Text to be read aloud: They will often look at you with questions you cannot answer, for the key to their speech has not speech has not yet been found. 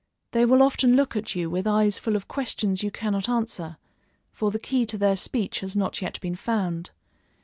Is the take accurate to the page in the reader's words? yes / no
no